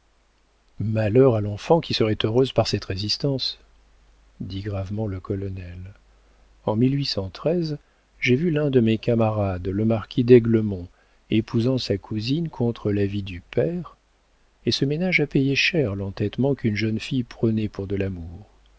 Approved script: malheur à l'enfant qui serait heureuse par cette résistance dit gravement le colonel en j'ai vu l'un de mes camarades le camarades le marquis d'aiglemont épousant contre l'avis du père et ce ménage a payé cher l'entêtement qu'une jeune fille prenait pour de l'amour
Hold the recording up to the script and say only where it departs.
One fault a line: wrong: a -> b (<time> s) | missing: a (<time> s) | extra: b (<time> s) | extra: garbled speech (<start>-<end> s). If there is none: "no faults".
missing: camarades le (9.8 s)
extra: sa cousine (11.8 s)